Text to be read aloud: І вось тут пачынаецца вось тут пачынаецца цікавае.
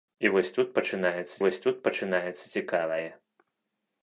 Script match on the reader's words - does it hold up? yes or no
yes